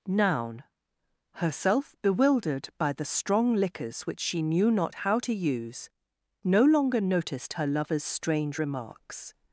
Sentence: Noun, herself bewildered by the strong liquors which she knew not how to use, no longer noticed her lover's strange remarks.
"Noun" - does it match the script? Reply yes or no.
yes